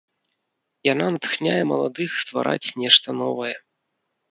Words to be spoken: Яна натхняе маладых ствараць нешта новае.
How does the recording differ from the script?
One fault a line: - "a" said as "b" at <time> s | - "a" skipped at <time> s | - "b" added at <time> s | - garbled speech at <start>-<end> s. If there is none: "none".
none